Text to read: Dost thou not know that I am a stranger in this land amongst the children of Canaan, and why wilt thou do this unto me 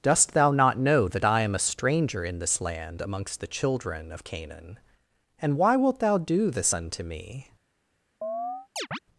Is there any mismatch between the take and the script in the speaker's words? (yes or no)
no